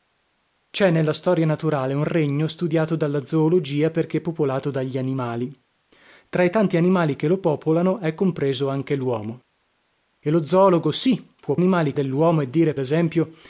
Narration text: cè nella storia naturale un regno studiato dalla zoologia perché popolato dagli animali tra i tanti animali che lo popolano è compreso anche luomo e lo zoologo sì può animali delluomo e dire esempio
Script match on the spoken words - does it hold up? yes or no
yes